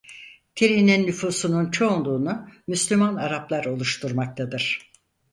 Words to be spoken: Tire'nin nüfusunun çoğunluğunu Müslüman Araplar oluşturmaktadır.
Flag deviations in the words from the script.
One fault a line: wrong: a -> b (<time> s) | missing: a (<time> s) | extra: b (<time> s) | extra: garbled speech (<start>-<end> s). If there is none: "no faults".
no faults